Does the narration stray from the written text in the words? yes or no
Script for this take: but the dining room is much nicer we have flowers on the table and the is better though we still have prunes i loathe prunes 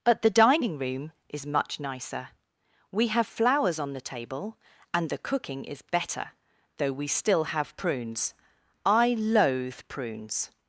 yes